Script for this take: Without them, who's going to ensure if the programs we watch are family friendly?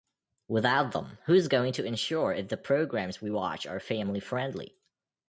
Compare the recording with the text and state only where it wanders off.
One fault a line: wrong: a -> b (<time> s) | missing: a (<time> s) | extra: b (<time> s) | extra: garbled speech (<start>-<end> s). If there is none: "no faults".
no faults